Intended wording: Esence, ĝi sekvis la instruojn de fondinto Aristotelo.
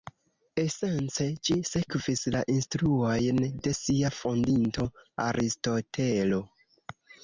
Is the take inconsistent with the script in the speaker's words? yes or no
yes